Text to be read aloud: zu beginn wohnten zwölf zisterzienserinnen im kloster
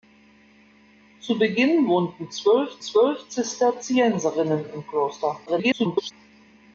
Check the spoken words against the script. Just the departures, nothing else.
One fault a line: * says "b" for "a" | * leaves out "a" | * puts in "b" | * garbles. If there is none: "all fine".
* puts in "zwölf"
* garbles